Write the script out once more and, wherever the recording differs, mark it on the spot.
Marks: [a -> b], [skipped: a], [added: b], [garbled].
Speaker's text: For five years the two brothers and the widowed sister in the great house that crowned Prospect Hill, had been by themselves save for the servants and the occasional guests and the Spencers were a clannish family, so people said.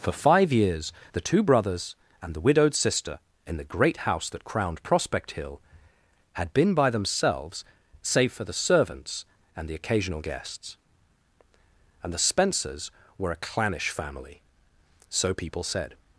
For five years the two brothers and the widowed sister in the great house that crowned Prospect Hill, had been by themselves save for the servants and the occasional guests and the Spencers were a clannish family, so people said.